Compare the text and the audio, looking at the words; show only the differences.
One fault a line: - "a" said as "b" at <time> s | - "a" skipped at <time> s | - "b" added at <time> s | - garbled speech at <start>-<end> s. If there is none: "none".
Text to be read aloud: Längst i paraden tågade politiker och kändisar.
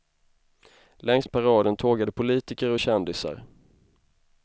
none